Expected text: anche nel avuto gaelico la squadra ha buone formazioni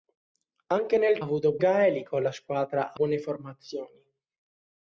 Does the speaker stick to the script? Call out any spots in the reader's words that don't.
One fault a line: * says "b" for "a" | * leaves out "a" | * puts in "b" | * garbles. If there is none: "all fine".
all fine